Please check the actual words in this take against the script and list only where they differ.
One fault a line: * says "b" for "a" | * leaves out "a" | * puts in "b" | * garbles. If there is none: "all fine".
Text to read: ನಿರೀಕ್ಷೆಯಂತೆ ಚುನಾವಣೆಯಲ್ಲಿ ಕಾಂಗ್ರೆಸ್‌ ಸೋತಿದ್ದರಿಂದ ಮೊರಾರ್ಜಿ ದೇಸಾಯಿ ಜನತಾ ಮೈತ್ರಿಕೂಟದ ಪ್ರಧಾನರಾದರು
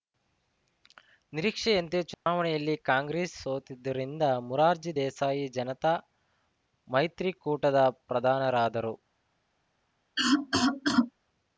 all fine